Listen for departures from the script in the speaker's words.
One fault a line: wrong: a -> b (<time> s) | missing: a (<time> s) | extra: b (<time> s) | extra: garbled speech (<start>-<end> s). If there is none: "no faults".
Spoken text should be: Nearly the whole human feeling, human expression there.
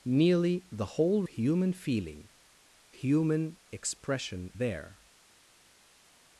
no faults